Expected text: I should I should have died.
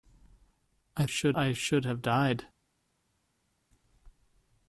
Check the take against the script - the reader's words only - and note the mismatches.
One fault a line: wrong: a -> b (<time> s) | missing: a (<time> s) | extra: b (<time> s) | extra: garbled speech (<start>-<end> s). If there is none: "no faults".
no faults